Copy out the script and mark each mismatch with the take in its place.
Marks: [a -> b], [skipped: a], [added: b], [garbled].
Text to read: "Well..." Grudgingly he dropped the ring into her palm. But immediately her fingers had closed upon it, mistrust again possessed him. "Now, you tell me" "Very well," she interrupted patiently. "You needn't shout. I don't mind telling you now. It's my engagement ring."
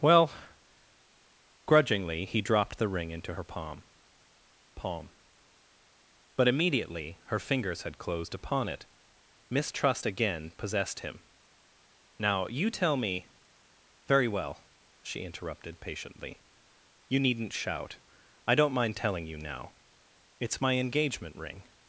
"Well..." Grudgingly he dropped the ring into her palm. [added: palm] But immediately her fingers had closed upon it, mistrust again possessed him. "Now, you tell me" "Very well," she interrupted patiently. "You needn't shout. I don't mind telling you now. It's my engagement ring."